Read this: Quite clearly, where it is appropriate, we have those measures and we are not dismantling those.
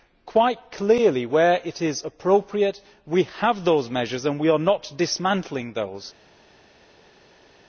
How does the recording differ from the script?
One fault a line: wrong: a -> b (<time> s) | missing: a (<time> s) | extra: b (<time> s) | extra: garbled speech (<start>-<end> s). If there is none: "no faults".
no faults